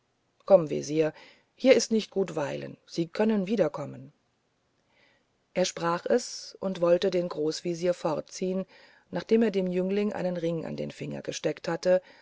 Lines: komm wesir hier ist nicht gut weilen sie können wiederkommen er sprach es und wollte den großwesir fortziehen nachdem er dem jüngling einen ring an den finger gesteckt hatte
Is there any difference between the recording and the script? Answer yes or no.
no